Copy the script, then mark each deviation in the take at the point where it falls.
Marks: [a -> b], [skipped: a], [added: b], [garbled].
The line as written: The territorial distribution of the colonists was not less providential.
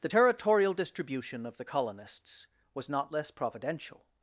The territorial distribution of the colonists was not less providential.